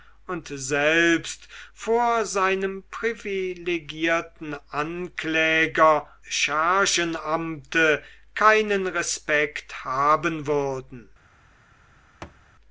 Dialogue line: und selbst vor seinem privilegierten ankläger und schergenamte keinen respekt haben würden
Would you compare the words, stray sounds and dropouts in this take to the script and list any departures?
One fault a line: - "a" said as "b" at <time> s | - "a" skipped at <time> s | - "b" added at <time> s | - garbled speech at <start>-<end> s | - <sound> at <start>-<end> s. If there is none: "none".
- "und" skipped at 6.1 s
- thud at 12.2-12.4 s